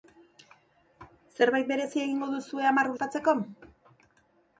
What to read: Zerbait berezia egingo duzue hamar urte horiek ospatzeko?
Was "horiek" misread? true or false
true